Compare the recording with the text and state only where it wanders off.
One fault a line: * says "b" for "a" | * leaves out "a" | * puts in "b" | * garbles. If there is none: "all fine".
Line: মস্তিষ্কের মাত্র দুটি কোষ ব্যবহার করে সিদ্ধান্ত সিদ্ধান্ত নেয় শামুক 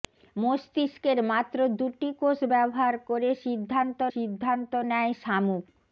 all fine